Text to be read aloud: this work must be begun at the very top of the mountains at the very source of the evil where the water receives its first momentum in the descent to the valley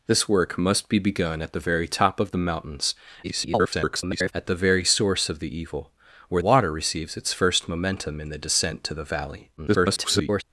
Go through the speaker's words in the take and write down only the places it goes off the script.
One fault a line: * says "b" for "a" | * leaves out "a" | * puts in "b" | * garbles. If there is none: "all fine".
* garbles
* leaves out "the"
* garbles